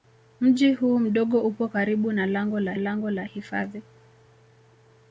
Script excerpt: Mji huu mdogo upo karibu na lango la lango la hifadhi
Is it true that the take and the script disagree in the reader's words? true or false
false